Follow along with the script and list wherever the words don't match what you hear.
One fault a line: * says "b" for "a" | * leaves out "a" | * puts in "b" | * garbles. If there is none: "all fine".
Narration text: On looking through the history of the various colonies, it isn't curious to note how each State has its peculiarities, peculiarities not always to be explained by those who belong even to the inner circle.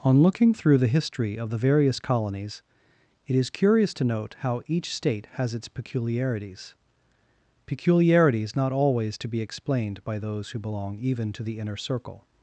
* says "is" for "isn't"